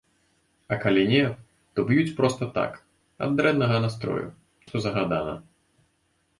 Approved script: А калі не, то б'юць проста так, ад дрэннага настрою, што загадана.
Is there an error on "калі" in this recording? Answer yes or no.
no